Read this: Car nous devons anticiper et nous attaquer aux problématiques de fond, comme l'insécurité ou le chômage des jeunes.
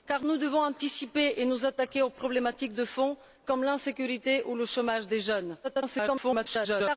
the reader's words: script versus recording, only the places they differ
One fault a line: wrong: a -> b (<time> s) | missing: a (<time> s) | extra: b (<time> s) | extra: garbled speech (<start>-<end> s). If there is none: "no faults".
extra: garbled speech (5.6-7.0 s)